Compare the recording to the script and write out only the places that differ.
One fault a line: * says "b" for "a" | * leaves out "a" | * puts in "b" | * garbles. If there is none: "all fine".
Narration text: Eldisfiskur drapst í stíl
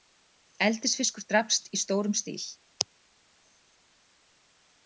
* puts in "stórum"